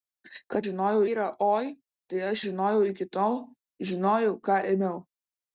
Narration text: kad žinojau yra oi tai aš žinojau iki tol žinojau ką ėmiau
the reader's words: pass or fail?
pass